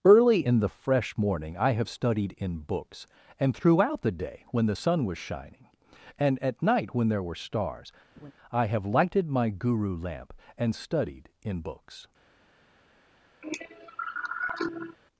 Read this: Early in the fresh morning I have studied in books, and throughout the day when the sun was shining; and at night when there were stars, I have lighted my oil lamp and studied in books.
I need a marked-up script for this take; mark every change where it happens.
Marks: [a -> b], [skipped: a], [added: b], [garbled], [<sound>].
Early in the fresh morning I have studied in books, and throughout the day when the sun was shining; and at night when there were stars, [laugh] I have lighted my [oil -> guru] lamp and studied in books. [cough]